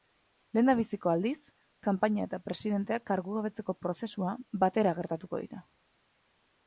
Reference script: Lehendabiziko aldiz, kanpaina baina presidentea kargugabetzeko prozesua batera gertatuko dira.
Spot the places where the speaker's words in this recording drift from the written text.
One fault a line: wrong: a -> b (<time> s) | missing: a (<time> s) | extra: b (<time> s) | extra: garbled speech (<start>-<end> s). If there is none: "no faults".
wrong: baina -> eta (2.3 s)